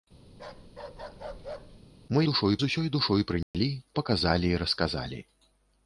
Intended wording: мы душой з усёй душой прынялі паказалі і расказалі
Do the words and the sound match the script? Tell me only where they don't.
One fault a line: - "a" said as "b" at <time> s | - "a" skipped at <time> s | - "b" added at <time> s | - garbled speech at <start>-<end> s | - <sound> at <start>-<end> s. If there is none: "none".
- bark at 0.3-1.8 s
- dropout at 3.4-3.5 s